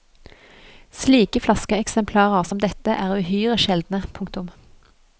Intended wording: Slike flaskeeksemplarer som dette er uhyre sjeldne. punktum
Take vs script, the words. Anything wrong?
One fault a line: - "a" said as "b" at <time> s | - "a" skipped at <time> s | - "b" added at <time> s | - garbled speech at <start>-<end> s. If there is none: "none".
none